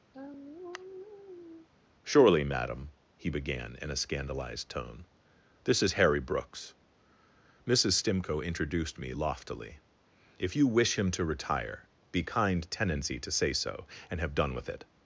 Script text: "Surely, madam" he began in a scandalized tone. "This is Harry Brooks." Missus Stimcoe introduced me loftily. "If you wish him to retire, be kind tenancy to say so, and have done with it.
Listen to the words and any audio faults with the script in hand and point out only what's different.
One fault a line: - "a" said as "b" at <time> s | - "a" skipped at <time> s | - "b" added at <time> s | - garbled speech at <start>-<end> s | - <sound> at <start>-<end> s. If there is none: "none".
- sigh at 0.1-1.7 s